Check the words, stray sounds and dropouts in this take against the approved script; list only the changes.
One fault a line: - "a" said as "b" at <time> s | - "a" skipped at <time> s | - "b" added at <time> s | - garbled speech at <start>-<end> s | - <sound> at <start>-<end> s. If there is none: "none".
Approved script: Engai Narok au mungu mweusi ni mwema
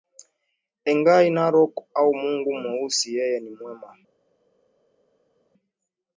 - "yeye" added at 3.1 s